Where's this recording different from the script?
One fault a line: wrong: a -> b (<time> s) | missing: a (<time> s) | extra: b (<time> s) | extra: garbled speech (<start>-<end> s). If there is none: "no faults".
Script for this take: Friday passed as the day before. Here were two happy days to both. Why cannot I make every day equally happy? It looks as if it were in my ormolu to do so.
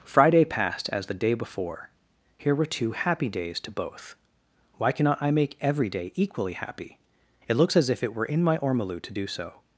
no faults